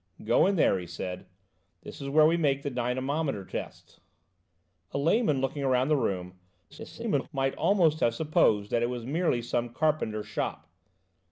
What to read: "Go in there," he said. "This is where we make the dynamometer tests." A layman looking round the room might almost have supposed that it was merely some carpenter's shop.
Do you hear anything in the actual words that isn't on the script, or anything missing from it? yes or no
yes